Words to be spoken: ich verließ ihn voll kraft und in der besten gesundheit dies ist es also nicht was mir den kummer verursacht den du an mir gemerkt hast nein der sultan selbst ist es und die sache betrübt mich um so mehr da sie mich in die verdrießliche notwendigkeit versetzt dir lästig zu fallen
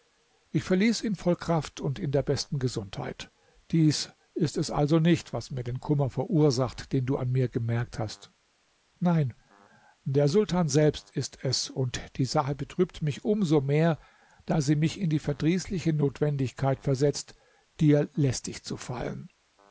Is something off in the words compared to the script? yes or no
no